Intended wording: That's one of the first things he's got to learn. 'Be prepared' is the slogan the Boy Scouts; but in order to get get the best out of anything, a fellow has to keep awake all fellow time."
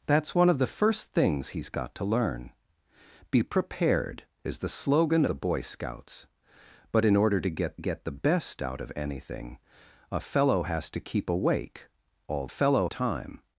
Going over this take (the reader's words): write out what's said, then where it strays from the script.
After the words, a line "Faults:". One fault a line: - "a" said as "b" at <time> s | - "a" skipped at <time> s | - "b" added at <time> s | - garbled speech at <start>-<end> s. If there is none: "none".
That's one of the first things he's got to learn. 'Be prepared' is the slogan the Boy Scouts; but in order to get get the best out of anything, a fellow has to keep awake all fellow time."
Faults:
none